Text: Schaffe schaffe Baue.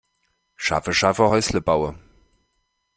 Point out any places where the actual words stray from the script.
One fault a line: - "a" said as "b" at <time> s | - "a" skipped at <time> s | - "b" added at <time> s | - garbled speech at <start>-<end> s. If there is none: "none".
- "Häusle" added at 1.3 s